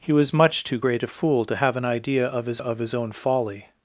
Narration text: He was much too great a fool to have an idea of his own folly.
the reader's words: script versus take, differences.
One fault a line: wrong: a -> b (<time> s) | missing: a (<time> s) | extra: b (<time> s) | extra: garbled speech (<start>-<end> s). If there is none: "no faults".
extra: of his (2.6 s)